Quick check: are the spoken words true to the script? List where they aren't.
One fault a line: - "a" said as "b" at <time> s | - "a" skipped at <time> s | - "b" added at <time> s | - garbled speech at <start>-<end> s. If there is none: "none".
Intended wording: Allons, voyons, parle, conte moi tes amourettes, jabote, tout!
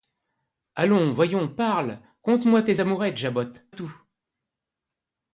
none